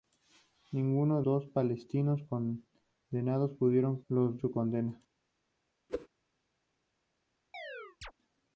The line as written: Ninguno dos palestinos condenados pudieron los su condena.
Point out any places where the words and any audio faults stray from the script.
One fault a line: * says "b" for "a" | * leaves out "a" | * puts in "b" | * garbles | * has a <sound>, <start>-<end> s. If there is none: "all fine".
* has a whoosh, 5.9-6.1 s
* has a chirp, 7.5-8.1 s